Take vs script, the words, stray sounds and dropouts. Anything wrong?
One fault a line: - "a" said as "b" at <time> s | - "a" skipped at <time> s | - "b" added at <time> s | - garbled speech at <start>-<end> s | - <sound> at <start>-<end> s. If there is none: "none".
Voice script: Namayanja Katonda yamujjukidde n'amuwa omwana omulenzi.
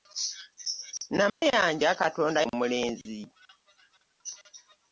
- dropout at 1.3-1.4 s
- "yamujjukidde n'amuwa omwana" skipped at 2.4 s